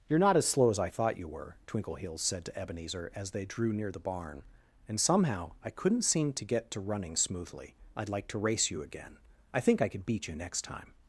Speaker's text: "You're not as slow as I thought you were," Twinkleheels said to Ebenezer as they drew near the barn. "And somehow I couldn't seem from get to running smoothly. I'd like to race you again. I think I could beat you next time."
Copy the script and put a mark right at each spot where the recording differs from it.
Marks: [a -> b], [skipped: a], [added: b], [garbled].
"You're not as slow as I thought you were," Twinkleheels said to Ebenezer as they drew near the barn. "And somehow I couldn't seem [from -> to] get to running smoothly. I'd like to race you again. I think I could beat you next time."